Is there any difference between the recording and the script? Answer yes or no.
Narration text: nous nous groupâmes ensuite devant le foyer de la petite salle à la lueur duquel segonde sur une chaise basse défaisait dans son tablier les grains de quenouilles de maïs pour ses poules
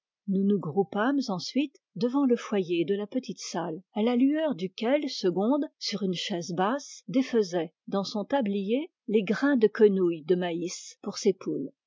no